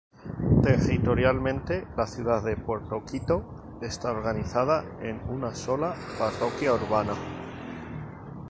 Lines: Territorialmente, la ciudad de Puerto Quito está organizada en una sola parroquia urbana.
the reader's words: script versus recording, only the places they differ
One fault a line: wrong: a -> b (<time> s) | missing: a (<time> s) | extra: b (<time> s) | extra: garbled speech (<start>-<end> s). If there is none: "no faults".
no faults